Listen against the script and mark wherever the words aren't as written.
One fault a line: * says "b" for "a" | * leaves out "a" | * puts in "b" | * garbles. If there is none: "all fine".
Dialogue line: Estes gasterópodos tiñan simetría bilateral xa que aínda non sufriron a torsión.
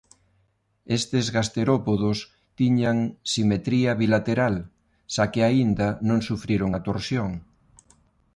all fine